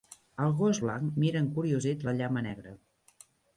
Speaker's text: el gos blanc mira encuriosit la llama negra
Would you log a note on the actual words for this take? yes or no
no